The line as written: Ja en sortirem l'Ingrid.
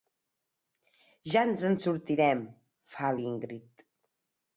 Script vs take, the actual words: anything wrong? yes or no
yes